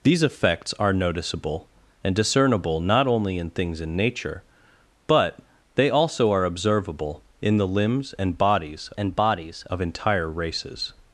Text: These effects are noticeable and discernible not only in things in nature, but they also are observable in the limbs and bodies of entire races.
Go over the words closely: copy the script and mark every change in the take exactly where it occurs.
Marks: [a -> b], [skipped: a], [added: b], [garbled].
These effects are noticeable and discernible not only in things in nature, but they also are observable in the limbs and bodies [added: and bodies] of entire races.